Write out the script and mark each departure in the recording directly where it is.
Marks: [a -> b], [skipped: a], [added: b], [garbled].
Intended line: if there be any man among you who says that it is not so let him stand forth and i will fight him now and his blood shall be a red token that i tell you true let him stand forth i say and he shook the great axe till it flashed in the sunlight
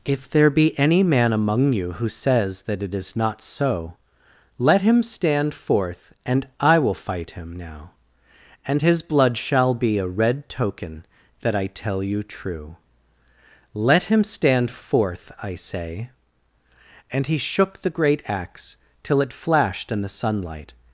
if there be any man among you who says that it is not so let him stand forth and i will fight him now and his blood shall be a red token that i tell you true let him stand forth i say and he shook the great axe till it flashed in the sunlight